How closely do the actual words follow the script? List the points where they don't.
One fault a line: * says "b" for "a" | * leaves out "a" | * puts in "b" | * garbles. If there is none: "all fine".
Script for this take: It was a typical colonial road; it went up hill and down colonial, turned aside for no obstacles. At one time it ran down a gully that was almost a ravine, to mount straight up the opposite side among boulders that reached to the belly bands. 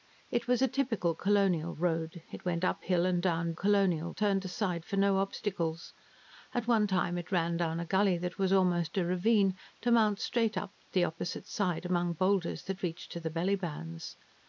all fine